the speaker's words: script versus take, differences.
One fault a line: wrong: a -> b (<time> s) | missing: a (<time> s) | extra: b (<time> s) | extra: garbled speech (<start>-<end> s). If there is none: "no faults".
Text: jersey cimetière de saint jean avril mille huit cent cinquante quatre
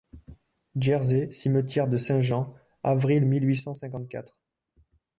no faults